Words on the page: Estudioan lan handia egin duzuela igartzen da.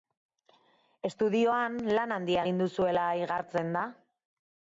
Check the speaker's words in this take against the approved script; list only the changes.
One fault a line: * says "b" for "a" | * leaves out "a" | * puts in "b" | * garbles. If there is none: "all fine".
all fine